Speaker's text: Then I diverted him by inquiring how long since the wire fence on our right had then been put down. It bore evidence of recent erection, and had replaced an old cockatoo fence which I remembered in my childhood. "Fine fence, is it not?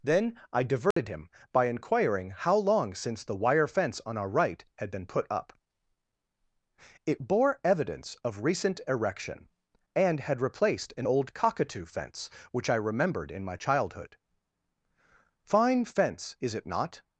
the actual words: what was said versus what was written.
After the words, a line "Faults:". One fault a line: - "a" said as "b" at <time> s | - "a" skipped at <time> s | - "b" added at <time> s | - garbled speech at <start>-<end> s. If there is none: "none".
Then I diverted him by inquiring how long since the wire fence on our right had been put up. It bore evidence of recent erection, and had replaced an old cockatoo fence which I remembered in my childhood. "Fine fence, is it not?
Faults:
- "then" skipped at 4.9 s
- "down" said as "up" at 5.3 s